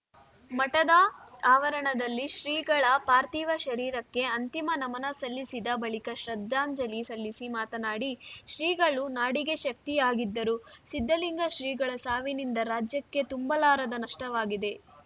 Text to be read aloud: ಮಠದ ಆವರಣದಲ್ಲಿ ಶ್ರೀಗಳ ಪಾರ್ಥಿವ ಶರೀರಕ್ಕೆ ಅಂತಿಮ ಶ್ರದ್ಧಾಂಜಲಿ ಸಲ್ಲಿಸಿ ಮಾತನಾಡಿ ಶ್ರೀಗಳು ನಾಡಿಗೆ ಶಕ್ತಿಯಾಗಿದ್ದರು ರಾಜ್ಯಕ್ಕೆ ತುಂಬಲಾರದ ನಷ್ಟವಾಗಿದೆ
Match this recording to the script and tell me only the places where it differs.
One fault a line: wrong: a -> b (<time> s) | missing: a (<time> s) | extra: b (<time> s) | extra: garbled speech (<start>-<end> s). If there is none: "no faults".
extra: ನಮನ ಸಲ್ಲಿಸಿದ ಬಳಿಕ (4.8 s)
extra: ಸಿದ್ಧಲಿಂಗ ಶ್ರೀಗಳ ಸಾವಿನಿಂದ (10.9 s)